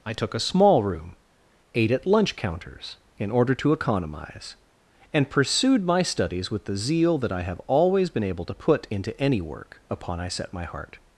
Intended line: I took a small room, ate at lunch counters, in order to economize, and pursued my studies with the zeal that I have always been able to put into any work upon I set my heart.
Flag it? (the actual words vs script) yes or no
no